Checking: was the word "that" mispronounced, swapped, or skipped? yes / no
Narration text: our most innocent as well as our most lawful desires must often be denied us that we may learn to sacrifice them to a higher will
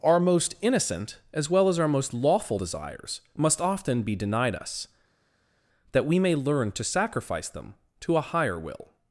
no